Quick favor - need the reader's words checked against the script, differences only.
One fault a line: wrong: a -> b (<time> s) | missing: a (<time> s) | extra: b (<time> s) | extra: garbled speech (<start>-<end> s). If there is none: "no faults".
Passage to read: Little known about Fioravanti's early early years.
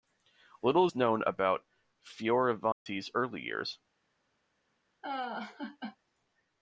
extra: is (0.8 s)
missing: early (3.4 s)